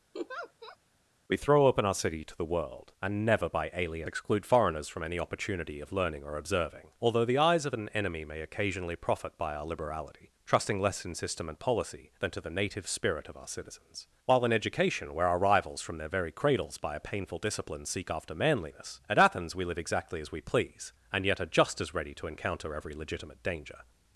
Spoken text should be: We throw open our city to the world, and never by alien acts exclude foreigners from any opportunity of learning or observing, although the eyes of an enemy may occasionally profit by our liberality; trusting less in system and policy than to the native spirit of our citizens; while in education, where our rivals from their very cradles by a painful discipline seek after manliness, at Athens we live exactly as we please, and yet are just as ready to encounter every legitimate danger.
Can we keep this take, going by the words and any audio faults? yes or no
no